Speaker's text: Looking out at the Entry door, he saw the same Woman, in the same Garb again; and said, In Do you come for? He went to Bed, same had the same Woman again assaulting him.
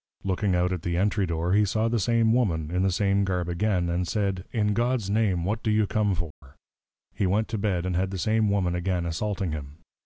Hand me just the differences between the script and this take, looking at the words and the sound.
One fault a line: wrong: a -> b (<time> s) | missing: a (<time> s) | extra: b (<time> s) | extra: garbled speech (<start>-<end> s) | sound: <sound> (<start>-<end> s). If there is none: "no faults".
extra: God's Name what (4.7 s)
sound: dropout (6.3-6.4 s)
wrong: same -> and (7.8 s)